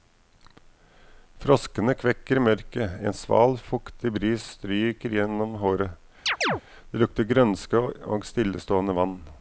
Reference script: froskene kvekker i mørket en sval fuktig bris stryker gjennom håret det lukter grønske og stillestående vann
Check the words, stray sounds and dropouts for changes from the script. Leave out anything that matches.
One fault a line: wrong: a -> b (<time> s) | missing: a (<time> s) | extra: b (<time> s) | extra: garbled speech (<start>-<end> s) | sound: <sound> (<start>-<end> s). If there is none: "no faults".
sound: chirp (6.3-6.6 s)